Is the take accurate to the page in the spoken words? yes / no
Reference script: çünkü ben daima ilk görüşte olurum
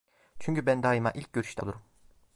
yes